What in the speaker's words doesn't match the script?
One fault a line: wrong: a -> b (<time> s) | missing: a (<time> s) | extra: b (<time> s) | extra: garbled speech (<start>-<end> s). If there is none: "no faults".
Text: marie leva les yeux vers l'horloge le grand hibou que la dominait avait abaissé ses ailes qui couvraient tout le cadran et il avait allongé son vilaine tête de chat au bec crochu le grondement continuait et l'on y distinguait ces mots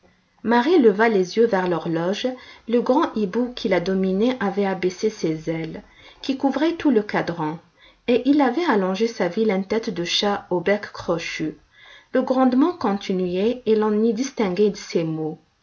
wrong: que -> qui (3.5 s)
wrong: son -> sa (9.1 s)